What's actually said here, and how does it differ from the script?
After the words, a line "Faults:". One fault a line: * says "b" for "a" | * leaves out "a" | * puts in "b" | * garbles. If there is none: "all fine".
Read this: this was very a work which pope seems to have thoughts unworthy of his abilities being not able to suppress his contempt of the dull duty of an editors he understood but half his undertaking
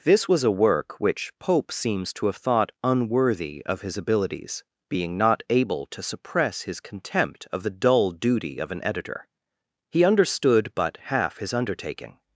this was a work which pope seems to have thought unworthy of his abilities being not able to suppress his contempt of the dull duty of an editor he understood but half his undertaking
Faults:
* leaves out "very"
* says "thought" for "thoughts"
* says "editor" for "editors"